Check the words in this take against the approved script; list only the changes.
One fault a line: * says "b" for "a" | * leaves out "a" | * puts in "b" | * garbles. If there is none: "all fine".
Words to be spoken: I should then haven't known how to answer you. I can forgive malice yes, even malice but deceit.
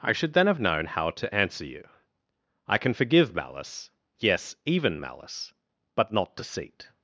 * says "have" for "haven't"
* puts in "not"